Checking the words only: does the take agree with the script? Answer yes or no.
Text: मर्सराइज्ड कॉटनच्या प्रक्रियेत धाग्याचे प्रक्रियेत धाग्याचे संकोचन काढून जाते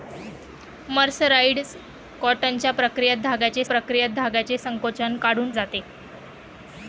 yes